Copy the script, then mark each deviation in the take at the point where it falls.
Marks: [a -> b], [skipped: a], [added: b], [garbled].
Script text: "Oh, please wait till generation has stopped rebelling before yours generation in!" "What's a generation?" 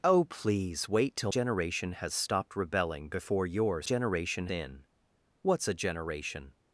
"Oh, please wait till generation has stopped rebelling before yours generation in!" "What's a generation?"